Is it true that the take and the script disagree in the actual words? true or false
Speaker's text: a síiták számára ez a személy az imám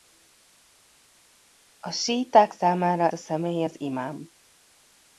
true